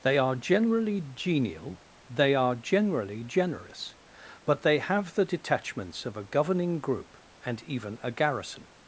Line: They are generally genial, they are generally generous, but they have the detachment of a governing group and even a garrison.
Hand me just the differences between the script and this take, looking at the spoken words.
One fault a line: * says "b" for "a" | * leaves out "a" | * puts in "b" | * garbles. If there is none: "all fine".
* says "detachments" for "detachment"